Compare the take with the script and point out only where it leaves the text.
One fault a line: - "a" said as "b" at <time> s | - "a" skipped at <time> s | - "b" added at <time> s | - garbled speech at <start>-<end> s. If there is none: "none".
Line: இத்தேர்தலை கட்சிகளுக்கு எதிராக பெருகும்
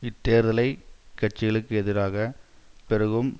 none